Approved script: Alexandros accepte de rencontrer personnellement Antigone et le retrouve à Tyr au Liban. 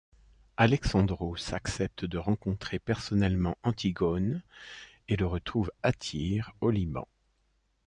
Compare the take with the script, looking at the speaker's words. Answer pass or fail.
pass